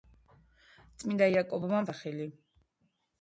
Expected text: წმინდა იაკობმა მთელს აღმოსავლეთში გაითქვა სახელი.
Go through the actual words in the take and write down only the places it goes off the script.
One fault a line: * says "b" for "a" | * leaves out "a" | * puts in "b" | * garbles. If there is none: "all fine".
* leaves out "მთელს აღმოსავლეთში გაითქვა"